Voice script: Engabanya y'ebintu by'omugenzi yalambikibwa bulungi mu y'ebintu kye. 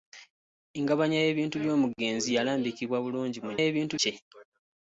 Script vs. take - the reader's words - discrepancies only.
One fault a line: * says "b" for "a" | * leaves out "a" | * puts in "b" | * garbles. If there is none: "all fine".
all fine